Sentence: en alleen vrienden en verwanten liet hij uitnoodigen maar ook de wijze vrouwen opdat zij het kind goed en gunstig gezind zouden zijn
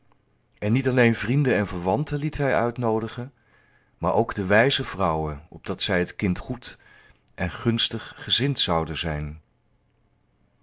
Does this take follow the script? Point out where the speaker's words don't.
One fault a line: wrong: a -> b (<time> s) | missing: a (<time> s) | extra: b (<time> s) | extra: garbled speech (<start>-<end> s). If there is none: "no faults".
extra: niet (0.7 s)